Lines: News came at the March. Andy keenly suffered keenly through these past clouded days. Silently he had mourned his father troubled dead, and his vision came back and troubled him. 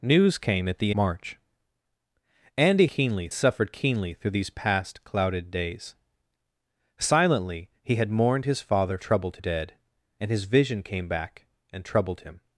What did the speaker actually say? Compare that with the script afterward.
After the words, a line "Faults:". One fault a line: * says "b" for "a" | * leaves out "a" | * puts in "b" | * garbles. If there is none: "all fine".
News came at the March. Andy keenly suffered keenly through these past clouded days. Silently he had mourned his father troubled dead, and his vision came back and troubled him.
Faults:
all fine